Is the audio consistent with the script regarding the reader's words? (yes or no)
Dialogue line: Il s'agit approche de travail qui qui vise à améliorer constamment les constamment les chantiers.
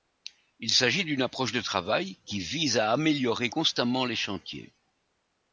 no